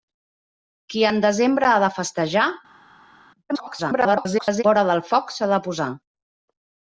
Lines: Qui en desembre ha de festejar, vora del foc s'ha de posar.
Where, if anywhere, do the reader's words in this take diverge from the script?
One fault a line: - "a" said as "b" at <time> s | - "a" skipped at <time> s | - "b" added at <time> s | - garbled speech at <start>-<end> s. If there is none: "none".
- garbled speech at 3.5-4.6 s